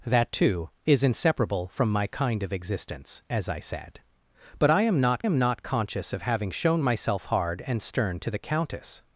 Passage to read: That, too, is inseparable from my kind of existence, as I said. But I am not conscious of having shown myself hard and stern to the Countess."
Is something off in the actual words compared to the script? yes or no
yes